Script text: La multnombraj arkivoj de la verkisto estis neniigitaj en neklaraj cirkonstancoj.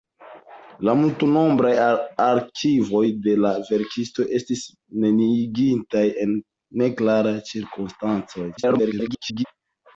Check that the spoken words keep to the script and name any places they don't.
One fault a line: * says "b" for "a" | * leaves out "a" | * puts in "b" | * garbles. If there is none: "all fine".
* garbles